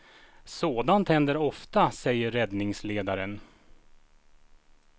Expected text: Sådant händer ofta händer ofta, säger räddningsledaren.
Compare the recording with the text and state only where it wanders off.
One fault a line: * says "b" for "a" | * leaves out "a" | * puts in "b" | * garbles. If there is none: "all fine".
* leaves out "händer ofta"